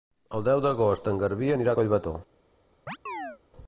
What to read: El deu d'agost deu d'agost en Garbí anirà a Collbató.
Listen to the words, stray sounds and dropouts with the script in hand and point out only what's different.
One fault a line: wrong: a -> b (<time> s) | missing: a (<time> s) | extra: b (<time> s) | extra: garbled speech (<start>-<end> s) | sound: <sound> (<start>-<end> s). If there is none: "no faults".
missing: deu d'agost (1.1 s)
sound: chirp (2.9-3.4 s)